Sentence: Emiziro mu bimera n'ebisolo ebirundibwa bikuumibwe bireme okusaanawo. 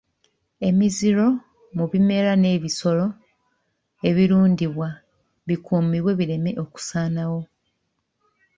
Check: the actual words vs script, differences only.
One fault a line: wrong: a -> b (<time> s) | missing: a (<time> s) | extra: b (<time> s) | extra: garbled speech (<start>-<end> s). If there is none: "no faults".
no faults